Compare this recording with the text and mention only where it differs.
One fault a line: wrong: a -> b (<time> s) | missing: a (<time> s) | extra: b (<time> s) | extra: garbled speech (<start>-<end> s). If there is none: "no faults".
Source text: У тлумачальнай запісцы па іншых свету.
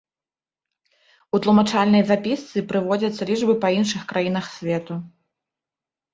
extra: прыводзяцца лічбы (2.7 s)
extra: краінах (4.2 s)